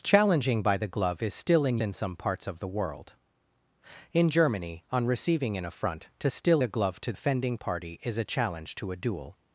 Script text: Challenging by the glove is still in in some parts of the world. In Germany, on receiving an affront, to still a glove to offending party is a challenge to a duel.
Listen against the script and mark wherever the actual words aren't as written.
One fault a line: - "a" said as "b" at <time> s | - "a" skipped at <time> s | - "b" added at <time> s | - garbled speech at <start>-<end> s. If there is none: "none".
none